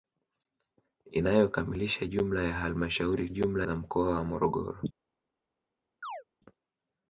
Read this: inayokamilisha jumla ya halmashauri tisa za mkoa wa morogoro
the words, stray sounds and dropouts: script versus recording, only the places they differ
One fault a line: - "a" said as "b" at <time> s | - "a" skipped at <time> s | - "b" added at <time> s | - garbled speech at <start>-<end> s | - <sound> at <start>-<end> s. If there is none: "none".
- "tisa" said as "jumla" at 3.3 s
- chirp at 6.0-6.2 s